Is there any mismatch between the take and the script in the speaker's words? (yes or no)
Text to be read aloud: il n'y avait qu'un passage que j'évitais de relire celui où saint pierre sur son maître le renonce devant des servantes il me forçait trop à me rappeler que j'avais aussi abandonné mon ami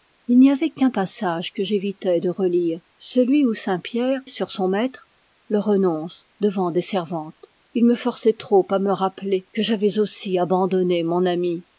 no